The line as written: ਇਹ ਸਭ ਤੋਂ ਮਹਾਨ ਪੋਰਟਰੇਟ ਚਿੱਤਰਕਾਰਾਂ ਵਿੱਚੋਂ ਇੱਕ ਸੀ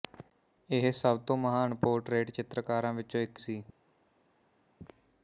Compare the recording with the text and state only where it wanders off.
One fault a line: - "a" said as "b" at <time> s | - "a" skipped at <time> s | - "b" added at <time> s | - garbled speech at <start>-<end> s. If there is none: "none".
none